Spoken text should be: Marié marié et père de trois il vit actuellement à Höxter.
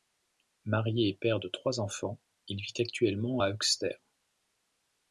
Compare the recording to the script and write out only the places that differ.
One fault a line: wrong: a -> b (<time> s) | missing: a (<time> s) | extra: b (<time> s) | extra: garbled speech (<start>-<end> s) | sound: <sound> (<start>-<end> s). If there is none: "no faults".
missing: marié (1.1 s)
extra: enfants (1.8 s)